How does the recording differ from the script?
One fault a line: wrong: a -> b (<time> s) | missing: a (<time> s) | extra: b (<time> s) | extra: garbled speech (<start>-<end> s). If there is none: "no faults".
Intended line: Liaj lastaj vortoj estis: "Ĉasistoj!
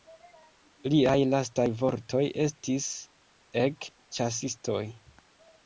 extra: Ek (3.7 s)